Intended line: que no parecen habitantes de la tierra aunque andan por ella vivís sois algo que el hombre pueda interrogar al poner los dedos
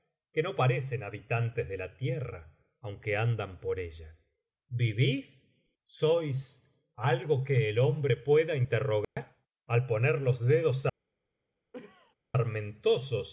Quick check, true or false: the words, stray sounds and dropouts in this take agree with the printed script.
false